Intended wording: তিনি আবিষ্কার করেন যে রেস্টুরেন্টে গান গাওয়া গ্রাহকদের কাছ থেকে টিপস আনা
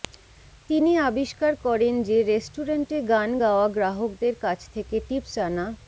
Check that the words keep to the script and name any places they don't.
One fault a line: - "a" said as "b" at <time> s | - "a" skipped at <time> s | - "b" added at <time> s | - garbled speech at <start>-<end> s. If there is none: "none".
none